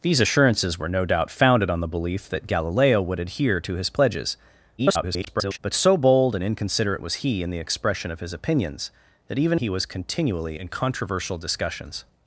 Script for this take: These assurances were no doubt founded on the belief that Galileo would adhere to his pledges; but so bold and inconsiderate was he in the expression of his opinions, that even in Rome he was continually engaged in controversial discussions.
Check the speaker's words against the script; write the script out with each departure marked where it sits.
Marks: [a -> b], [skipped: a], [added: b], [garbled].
These assurances were no doubt founded on the belief that Galileo would adhere to his pledges; [garbled] but so bold and inconsiderate was he in the expression of his opinions, that even [skipped: in Rome] he was continually [skipped: engaged] in controversial discussions.